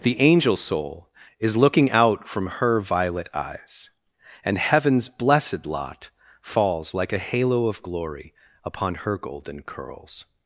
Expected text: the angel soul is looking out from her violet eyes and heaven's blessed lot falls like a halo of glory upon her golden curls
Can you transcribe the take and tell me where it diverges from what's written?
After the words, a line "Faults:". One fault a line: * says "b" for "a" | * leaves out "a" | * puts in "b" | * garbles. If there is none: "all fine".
the angel soul is looking out from her violet eyes and heaven's blessed lot falls like a halo of glory upon her golden curls
Faults:
all fine